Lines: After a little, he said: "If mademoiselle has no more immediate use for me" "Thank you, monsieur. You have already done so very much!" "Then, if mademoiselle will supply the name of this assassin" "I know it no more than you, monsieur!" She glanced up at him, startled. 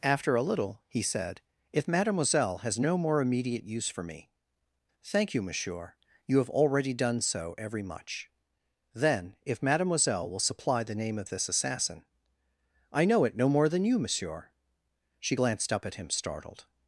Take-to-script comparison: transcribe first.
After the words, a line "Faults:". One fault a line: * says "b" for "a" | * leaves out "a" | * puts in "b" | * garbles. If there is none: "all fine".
After a little, he said: "If mademoiselle has no more immediate use for me" "Thank you, monsieur. You have already done so every much!" "Then, if mademoiselle will supply the name of this assassin" "I know it no more than you, monsieur!" She glanced up at him, startled.
Faults:
* says "every" for "very"